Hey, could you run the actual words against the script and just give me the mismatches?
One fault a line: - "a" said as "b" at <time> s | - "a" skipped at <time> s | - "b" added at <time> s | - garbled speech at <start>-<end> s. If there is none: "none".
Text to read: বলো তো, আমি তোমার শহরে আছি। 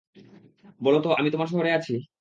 none